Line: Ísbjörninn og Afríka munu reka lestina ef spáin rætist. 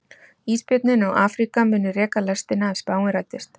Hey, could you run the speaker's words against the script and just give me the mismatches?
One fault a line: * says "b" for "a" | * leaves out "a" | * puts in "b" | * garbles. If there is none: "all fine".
all fine